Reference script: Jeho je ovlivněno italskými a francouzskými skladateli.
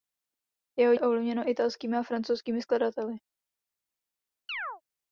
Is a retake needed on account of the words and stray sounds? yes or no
yes